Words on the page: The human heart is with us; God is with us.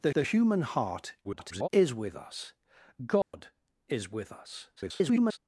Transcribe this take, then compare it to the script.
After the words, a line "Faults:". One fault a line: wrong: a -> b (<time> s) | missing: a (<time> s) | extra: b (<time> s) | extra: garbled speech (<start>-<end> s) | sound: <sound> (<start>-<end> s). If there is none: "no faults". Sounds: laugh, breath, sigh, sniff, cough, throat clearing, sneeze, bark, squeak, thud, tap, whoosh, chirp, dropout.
The the human heart [garbled] is with us; God is with us. [garbled]
Faults:
extra: the (0.1 s)
extra: garbled speech (1.2-1.7 s)
sound: dropout (3.2-3.3 s)
extra: garbled speech (4.8-5.4 s)